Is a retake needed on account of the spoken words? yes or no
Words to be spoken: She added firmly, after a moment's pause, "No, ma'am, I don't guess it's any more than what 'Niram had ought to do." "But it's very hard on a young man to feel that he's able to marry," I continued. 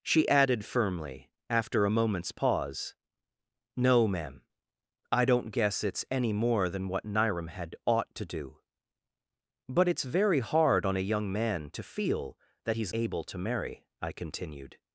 no